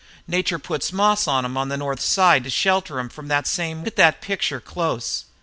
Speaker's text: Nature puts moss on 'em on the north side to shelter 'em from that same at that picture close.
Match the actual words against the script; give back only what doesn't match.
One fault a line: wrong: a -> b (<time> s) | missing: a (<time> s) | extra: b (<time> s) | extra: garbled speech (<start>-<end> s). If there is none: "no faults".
no faults